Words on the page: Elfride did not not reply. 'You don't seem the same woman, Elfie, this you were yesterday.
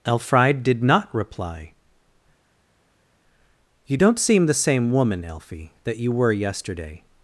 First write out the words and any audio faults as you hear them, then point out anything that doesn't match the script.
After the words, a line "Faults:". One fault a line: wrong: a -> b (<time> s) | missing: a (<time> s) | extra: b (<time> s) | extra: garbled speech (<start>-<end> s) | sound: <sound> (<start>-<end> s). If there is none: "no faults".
Elfride did not reply. 'You don't seem the same woman, Elfie, that you were yesterday.
Faults:
missing: not (1.1 s)
wrong: this -> that (5.8 s)